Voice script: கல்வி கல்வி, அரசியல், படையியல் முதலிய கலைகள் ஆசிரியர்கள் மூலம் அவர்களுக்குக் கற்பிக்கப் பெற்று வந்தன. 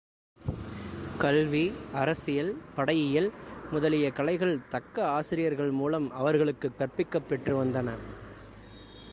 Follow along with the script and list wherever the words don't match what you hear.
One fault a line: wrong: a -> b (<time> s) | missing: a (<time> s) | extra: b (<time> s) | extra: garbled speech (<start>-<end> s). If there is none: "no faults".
missing: கல்வி (1.7 s)
extra: தக்க (4.7 s)